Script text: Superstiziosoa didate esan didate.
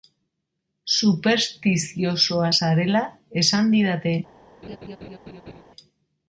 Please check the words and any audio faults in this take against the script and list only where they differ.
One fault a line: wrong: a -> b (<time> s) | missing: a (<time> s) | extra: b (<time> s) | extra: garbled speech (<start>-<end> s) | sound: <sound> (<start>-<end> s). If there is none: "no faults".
wrong: didate -> zarela (2.6 s)
sound: laugh (4.6-5.6 s)